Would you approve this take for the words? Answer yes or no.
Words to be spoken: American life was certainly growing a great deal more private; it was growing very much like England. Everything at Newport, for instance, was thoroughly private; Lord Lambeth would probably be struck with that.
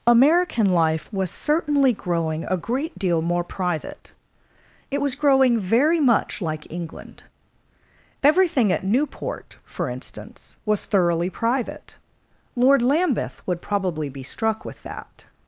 yes